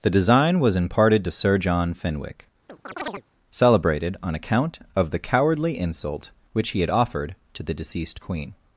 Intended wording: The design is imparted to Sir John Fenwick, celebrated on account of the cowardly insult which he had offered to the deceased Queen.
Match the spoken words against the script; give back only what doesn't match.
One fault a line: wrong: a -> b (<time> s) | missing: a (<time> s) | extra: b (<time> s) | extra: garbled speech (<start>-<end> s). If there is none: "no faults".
wrong: is -> was (0.6 s)